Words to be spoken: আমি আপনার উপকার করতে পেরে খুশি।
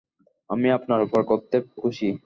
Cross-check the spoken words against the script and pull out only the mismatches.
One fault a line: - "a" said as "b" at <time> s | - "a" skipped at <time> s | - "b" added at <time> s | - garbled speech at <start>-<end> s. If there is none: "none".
- "পেরে" skipped at 1.6 s